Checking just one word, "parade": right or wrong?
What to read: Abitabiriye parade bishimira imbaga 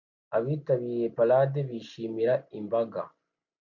right